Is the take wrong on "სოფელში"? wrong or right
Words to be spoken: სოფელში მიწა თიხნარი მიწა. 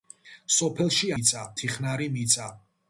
right